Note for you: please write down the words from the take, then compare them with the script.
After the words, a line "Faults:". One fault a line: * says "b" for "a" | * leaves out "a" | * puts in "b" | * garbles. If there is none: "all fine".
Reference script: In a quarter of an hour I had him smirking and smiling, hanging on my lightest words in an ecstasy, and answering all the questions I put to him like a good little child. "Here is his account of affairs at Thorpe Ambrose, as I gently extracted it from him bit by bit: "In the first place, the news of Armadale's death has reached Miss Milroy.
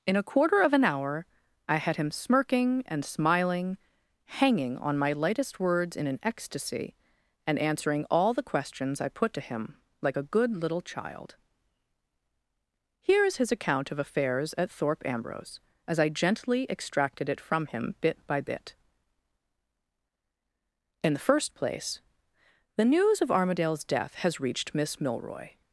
In a quarter of an hour I had him smirking and smiling, hanging on my lightest words in an ecstasy, and answering all the questions I put to him like a good little child. "Here is his account of affairs at Thorpe Ambrose, as I gently extracted it from him bit by bit: "In the first place, the news of Armadale's death has reached Miss Milroy.
Faults:
all fine